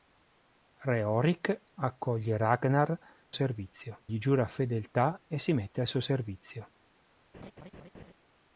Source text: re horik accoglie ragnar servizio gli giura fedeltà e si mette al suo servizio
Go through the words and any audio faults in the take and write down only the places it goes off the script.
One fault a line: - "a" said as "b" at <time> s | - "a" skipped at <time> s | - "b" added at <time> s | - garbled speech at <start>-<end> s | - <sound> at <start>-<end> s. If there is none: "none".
- laugh at 7.3-8.1 s